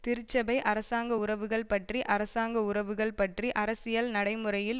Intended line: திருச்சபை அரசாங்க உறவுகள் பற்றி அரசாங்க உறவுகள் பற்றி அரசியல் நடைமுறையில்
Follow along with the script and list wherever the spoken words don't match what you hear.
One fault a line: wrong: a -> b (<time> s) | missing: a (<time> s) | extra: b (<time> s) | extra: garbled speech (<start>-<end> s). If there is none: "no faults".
no faults